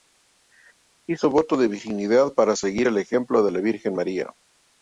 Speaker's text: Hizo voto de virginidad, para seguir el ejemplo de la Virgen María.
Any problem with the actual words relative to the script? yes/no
no